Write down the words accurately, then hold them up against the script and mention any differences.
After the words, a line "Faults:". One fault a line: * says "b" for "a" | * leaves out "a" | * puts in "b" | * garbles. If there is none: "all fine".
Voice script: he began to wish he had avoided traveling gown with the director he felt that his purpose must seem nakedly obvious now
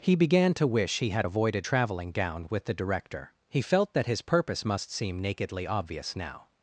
he began to wish he had avoided traveling gown with the director he felt that his purpose must seem nakedly obvious now
Faults:
all fine